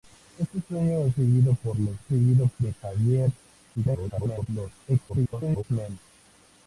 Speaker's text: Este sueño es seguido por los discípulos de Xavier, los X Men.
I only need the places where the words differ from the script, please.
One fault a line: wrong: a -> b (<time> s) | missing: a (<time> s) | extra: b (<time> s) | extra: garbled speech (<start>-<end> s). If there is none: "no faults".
wrong: discípulos -> seguido (2.1 s)
extra: garbled speech (3.7-4.5 s)
extra: garbled speech (5.1-5.6 s)